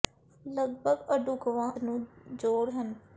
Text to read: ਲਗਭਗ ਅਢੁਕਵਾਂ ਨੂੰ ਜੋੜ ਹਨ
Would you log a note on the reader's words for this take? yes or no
no